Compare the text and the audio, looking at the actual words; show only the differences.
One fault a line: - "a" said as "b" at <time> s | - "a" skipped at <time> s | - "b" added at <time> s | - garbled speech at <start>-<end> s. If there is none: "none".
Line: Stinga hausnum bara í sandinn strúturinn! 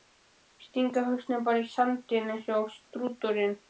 - "eins og" added at 2.4 s